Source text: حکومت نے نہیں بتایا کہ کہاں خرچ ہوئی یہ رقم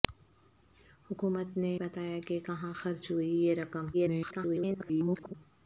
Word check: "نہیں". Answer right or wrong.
wrong